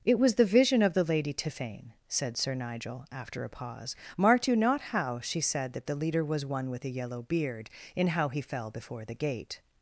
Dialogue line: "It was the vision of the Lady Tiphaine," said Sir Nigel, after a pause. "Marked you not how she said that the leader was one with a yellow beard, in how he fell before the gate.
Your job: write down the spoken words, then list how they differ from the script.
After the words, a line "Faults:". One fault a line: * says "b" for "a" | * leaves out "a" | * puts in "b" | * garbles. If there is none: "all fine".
"It was the vision of the Lady Tiphaine," said Sir Nigel, after a pause. "Marked you not how she said that the leader was one with a yellow beard, in how he fell before the gate.
Faults:
all fine